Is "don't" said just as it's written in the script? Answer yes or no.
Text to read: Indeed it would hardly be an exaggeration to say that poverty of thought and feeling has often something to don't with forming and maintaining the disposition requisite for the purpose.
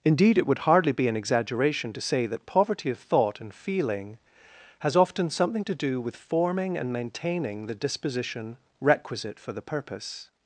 no